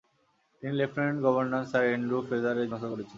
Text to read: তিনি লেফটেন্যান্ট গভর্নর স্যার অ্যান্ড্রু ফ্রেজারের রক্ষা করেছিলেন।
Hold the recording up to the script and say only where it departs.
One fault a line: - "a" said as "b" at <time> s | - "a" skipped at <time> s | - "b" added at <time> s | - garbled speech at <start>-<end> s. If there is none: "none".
none